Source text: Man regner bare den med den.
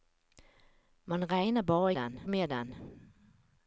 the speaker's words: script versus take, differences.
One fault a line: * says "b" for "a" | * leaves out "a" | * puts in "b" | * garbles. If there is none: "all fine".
all fine